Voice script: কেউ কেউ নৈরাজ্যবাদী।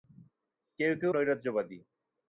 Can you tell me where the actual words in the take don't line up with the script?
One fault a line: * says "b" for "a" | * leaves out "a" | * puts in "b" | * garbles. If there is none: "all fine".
all fine